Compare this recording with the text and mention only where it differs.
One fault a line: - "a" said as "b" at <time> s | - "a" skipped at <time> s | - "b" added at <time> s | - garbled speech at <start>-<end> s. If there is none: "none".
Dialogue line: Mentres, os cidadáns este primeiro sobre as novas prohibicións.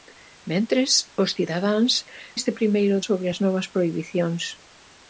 none